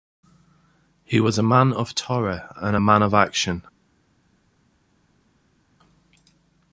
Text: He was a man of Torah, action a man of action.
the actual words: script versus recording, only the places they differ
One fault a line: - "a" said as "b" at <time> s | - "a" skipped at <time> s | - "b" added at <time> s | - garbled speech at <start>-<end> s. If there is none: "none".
- "action" said as "and" at 2.6 s